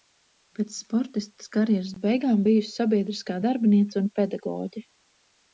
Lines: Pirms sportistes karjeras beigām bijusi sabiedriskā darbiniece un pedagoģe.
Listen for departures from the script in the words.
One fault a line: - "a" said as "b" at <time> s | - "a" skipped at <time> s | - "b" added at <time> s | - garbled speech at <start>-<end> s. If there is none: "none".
- "Pirms" said as "Pēc" at 0.6 s